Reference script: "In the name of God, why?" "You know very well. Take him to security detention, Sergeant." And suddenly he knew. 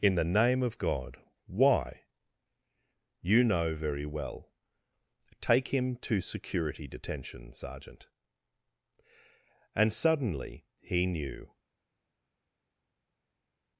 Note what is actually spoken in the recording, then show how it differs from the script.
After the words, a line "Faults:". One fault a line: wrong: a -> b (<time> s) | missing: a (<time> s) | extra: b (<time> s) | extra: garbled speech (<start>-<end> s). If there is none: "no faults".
"In the name of God, why?" "You know very well. Take him to security detention, Sergeant." And suddenly he knew.
Faults:
no faults